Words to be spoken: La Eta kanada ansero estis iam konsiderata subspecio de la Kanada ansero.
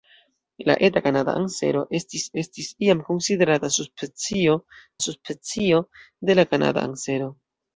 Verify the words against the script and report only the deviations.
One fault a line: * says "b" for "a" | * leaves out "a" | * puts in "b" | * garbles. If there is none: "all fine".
* puts in "estis"
* puts in "subspecio"